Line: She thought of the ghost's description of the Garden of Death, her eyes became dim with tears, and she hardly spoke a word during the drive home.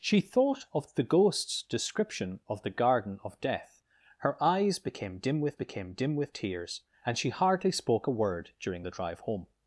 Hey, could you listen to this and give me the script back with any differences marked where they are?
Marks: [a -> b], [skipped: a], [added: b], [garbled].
She thought of the ghost's description of the Garden of Death, her eyes became dim with [added: became dim with] tears, and she hardly spoke a word during the drive home.